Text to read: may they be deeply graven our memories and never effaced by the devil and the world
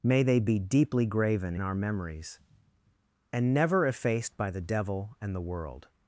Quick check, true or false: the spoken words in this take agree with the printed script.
true